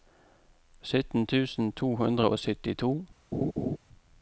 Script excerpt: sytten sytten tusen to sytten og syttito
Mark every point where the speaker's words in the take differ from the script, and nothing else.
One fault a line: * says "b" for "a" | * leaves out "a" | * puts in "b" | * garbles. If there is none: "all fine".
* leaves out "sytten"
* says "hundre" for "sytten"